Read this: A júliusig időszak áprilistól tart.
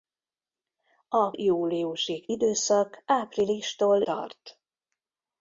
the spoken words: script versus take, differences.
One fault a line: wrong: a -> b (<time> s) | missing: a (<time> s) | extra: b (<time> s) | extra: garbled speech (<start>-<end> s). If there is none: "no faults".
no faults